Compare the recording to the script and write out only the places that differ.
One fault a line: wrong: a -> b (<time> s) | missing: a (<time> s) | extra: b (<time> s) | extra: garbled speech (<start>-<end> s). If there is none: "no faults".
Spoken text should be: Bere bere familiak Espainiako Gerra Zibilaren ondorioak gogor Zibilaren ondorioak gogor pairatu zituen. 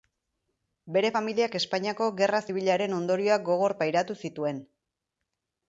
missing: bere (1.1 s)
missing: Zibilaren ondorioak gogor (3.8 s)